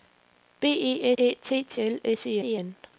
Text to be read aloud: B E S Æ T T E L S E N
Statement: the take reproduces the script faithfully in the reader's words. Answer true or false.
false